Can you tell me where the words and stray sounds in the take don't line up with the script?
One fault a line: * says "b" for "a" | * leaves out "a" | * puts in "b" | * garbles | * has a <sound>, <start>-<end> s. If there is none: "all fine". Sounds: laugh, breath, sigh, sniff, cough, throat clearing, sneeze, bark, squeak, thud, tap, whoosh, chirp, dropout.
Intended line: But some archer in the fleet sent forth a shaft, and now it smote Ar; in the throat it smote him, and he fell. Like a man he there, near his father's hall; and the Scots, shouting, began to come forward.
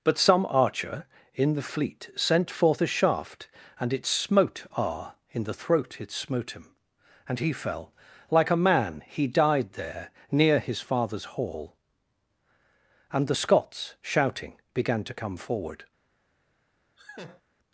* leaves out "now"
* puts in "died"
* has a laugh, 17.0-17.4 s